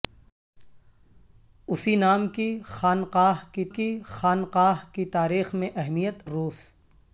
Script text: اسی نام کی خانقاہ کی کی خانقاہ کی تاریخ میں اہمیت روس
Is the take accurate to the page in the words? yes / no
yes